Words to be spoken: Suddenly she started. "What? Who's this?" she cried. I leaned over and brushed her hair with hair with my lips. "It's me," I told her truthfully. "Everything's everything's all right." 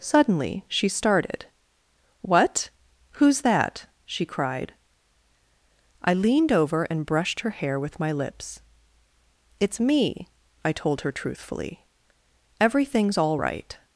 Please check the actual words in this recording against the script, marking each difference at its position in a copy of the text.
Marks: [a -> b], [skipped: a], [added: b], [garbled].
Suddenly she started. "What? Who's [this?" -> that] she cried. I leaned over and brushed her hair with [skipped: hair with] my lips. "It's me," I told her truthfully. "Everything's [skipped: everything's] all right."